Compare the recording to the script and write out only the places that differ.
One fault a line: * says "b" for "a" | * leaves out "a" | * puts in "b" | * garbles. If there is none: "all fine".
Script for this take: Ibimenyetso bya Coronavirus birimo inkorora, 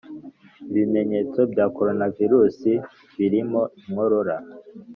all fine